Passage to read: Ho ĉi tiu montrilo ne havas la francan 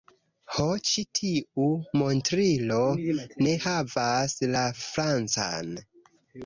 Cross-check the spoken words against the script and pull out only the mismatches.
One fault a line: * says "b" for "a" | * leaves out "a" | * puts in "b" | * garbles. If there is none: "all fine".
all fine